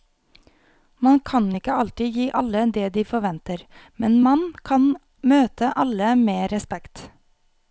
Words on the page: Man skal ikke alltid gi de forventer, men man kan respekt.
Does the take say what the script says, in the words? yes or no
no